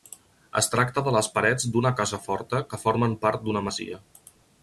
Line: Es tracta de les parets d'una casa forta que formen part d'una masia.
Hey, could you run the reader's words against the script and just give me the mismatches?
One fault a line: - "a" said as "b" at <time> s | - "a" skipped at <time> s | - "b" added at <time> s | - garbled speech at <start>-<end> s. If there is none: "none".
none